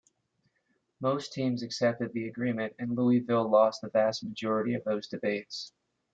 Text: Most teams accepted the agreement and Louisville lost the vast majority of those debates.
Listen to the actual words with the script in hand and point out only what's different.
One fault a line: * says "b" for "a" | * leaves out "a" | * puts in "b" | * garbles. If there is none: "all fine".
all fine